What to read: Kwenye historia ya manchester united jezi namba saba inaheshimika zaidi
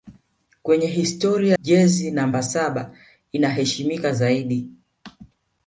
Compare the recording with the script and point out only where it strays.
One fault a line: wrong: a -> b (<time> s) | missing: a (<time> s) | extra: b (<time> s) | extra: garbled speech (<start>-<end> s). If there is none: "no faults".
missing: ya manchester united (1.6 s)